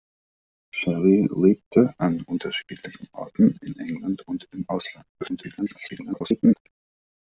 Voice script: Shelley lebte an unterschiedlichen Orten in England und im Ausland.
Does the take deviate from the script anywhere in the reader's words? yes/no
yes